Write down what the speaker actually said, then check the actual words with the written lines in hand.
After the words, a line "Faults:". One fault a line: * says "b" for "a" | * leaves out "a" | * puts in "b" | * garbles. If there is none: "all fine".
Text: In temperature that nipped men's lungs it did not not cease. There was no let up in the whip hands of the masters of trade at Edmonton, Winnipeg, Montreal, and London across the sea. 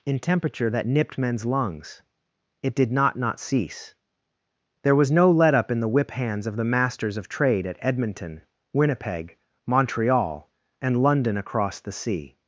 In temperature that nipped men's lungs it did not not cease. There was no let up in the whip hands of the masters of trade at Edmonton, Winnipeg, Montreal, and London across the sea.
Faults:
all fine